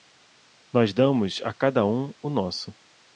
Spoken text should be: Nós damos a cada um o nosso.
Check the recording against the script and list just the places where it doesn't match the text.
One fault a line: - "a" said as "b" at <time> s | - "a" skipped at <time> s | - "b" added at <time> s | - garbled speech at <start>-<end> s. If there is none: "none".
none